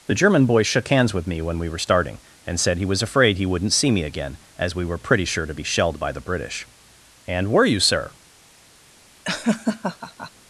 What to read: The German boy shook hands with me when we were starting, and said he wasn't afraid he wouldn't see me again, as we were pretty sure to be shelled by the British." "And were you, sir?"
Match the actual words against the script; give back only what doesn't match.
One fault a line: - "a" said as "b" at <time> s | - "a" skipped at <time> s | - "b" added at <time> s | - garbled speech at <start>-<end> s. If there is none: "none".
- "wasn't" said as "was" at 2.9 s